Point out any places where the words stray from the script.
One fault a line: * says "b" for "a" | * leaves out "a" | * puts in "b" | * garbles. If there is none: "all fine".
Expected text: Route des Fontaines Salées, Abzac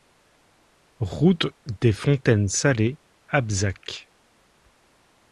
all fine